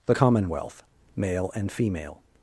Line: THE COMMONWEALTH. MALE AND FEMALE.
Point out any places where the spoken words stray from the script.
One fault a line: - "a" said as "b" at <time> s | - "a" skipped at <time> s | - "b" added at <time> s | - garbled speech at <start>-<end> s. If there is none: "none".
none